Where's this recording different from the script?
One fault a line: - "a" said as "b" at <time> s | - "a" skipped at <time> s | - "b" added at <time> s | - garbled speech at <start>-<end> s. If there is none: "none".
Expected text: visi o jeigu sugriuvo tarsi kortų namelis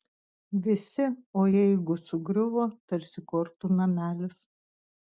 none